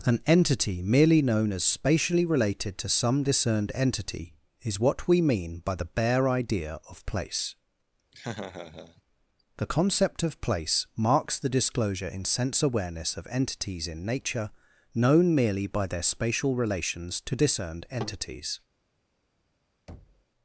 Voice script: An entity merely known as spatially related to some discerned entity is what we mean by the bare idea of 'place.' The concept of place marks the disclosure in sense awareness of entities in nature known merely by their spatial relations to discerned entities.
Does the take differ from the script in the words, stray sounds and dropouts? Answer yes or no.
yes